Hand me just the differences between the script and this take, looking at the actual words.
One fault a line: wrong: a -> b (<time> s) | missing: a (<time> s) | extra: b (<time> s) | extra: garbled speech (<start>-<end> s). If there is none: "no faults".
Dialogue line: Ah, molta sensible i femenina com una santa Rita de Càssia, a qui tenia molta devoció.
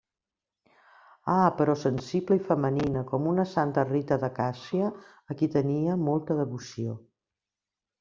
wrong: molta -> però (1.6 s)